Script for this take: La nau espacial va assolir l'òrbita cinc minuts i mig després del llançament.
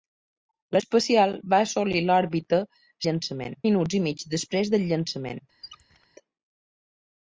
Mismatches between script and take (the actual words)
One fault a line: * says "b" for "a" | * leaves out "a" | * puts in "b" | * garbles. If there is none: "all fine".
* leaves out "nau"
* says "llançament" for "cinc"